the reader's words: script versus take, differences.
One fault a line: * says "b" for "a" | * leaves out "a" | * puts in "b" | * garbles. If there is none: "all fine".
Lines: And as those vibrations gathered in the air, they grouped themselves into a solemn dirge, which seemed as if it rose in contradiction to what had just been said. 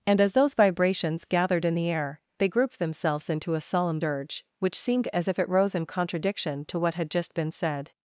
all fine